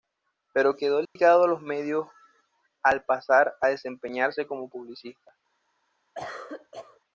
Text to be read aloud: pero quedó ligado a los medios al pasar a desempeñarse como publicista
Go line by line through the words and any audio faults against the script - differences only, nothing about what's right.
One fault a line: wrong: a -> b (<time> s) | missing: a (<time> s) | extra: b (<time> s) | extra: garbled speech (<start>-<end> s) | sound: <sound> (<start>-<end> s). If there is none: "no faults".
sound: dropout (1.1-1.2 s)
sound: cough (6.1-7.0 s)